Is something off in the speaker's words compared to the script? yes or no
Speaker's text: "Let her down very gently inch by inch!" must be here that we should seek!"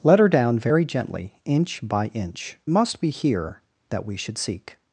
no